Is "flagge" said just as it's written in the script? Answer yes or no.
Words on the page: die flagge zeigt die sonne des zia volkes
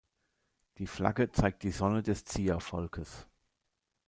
yes